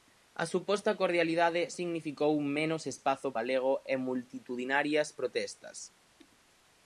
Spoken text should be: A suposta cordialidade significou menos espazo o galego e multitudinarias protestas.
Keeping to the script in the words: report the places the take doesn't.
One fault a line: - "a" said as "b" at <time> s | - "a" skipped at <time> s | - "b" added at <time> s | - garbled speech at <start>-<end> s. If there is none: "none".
none